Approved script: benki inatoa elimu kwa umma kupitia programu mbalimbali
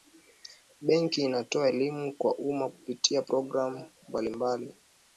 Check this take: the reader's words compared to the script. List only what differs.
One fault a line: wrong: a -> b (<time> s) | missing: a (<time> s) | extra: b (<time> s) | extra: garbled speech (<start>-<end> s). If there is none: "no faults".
no faults